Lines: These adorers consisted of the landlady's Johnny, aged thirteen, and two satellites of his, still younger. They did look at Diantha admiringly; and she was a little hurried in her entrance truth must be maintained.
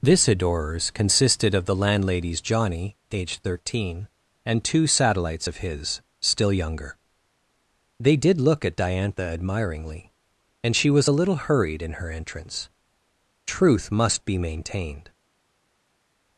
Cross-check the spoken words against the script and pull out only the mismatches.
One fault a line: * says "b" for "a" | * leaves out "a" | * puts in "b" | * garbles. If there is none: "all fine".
* says "This" for "These"